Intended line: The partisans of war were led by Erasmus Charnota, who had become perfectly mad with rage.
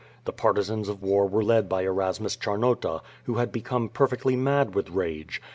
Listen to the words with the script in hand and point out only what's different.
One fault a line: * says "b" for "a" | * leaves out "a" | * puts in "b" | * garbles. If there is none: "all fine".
all fine